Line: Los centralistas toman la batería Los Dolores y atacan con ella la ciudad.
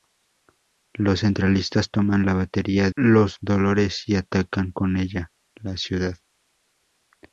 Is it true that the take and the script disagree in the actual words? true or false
false